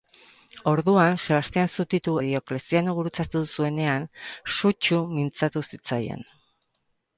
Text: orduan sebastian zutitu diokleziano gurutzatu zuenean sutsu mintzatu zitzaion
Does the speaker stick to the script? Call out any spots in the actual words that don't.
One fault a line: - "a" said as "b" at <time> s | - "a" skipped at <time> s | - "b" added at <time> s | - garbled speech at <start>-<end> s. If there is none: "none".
none